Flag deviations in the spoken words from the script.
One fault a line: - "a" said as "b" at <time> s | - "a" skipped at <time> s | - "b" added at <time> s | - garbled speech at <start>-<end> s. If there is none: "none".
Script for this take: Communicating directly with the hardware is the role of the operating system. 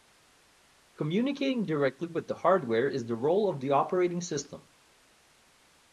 none